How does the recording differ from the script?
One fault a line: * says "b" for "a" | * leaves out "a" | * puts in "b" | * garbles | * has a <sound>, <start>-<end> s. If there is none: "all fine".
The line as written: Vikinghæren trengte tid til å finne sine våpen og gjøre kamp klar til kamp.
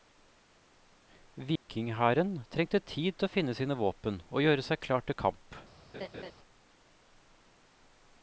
* has a dropout, 1.6-1.7 s
* says "seg" for "kamp"
* has a laugh, 5.9-6.3 s